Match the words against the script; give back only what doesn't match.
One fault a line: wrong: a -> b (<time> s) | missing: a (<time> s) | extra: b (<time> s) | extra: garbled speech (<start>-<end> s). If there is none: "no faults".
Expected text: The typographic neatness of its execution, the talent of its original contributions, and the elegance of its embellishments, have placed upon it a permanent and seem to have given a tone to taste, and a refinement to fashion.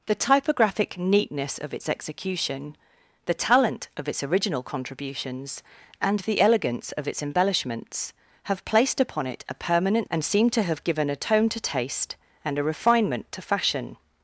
no faults